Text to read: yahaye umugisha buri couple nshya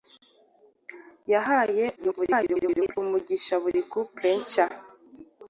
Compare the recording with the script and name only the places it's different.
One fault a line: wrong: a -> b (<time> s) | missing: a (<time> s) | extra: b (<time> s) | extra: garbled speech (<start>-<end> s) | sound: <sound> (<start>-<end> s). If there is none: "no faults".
extra: garbled speech (2.0-3.0 s)